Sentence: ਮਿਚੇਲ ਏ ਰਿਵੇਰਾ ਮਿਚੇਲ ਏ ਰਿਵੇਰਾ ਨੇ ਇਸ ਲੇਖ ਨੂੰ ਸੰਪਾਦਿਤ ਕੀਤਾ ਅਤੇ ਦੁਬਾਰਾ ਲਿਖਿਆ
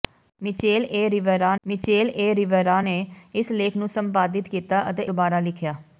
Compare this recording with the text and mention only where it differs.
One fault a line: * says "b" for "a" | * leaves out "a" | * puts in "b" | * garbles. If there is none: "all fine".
all fine